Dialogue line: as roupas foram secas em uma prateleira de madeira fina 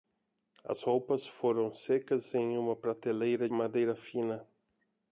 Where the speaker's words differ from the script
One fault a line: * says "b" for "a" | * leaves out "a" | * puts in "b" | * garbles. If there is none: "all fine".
* leaves out "de"